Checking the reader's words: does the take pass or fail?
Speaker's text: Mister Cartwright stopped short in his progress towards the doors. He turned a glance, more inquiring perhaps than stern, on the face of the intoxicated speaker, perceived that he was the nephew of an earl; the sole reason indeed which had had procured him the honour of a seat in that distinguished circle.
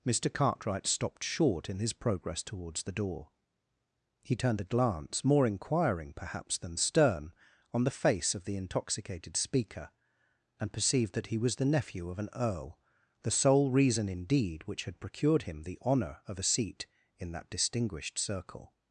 fail